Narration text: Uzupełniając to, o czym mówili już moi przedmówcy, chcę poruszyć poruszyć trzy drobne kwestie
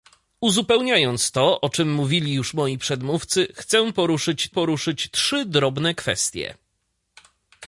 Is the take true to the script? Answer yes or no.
yes